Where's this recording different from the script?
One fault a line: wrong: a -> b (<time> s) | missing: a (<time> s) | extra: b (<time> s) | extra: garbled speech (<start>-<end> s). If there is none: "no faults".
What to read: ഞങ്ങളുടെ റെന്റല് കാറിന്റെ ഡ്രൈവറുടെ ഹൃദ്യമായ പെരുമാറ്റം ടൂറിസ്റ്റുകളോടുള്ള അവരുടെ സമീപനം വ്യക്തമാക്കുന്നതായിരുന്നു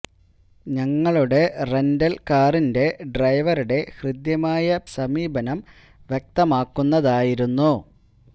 missing: പെരുമാറ്റം ടൂറിസ്റ്റുകളോടുള്ള അവരുടെ (4.8 s)